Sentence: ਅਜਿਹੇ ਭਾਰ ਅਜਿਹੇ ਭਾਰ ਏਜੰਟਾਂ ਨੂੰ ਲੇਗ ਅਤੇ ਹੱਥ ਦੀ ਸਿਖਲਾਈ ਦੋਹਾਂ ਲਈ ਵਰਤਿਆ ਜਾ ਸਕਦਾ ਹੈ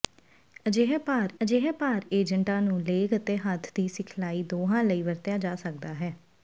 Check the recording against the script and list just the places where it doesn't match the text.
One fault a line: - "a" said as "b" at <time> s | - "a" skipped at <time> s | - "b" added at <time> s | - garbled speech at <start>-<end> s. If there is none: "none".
none